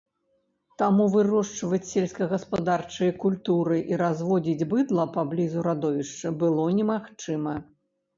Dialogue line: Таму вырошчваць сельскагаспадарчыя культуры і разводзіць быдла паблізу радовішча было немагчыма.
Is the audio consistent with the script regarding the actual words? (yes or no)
yes